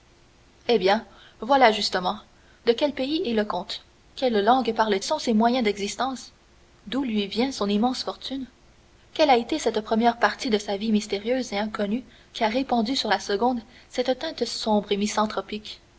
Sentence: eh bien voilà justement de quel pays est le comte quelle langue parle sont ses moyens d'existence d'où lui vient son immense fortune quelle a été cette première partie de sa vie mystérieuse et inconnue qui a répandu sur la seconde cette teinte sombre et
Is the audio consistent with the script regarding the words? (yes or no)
yes